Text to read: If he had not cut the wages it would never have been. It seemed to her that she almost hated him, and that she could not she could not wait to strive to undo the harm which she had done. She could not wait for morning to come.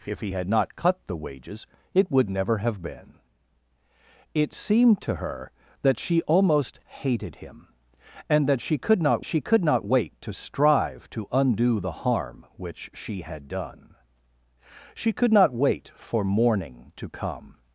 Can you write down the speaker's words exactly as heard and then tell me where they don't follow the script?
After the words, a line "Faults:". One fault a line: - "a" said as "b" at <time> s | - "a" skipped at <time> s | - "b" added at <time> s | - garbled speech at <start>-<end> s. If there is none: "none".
If he had not cut the wages it would never have been. It seemed to her that she almost hated him, and that she could not she could not wait to strive to undo the harm which she had done. She could not wait for morning to come.
Faults:
none